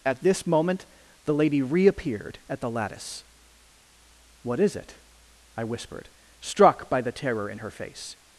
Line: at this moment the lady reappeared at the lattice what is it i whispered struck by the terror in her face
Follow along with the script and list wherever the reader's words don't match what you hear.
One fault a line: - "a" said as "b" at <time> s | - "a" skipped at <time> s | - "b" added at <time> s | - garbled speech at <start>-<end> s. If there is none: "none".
none